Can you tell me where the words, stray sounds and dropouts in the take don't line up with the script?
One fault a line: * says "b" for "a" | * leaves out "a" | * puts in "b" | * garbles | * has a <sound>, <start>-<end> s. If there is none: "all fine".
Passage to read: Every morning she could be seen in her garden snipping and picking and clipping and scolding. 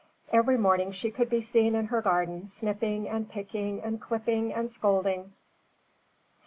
all fine